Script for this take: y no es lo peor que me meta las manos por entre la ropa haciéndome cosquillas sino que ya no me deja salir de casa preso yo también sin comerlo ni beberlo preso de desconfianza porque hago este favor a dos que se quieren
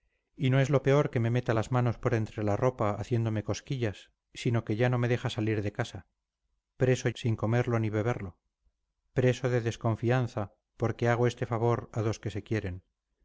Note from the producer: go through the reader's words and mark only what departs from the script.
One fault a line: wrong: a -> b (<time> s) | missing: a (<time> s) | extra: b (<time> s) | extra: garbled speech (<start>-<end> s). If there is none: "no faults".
missing: yo también (7.1 s)